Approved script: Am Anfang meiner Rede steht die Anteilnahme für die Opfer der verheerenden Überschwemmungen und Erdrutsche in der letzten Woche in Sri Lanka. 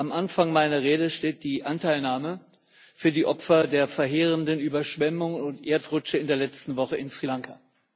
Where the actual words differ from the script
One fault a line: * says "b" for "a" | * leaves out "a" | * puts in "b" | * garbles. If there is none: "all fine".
all fine